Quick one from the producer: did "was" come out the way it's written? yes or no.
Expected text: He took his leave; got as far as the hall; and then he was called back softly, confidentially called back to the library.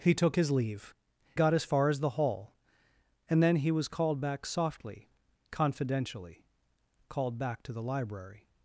yes